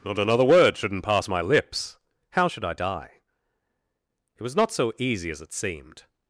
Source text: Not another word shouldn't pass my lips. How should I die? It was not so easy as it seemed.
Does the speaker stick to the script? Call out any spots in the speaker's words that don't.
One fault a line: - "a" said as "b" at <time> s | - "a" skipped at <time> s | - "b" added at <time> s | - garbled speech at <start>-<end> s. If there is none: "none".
none